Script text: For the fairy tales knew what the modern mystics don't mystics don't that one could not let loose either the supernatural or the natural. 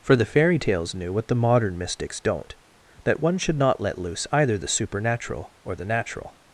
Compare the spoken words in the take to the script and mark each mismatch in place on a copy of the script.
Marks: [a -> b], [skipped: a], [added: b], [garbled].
For the fairy tales knew what the modern mystics don't [skipped: mystics don't] that one [could -> should] not let loose either the supernatural or the natural.